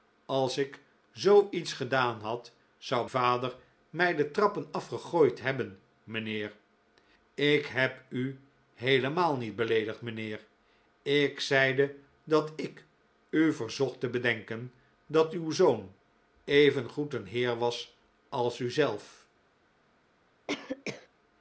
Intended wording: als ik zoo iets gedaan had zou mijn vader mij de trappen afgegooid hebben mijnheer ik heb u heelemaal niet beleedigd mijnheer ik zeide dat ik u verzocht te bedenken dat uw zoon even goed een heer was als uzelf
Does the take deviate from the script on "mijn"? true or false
true